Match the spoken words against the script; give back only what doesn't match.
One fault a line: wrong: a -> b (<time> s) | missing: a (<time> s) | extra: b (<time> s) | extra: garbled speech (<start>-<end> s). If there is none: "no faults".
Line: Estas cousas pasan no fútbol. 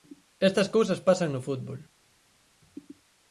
no faults